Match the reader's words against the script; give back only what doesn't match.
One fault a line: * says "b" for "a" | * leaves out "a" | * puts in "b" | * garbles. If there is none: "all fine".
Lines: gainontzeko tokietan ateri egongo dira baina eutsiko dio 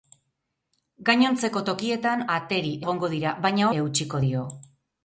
all fine